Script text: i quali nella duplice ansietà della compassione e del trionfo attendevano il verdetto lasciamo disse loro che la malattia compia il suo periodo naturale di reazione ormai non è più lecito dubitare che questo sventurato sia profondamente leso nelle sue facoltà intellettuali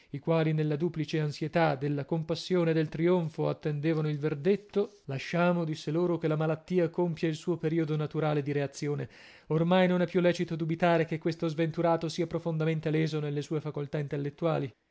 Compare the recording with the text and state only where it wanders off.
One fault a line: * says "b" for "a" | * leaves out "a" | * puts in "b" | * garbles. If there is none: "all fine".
all fine